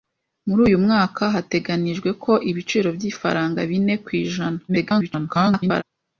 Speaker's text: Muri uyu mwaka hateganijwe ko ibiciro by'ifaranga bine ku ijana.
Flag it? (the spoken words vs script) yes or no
yes